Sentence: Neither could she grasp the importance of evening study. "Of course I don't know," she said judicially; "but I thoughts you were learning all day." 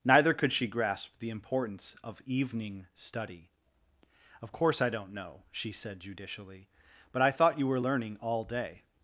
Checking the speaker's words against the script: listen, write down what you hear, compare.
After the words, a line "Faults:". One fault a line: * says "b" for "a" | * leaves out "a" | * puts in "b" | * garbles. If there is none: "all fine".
Neither could she grasp the importance of evening study. "Of course I don't know," she said judicially; "but I thought you were learning all day."
Faults:
* says "thought" for "thoughts"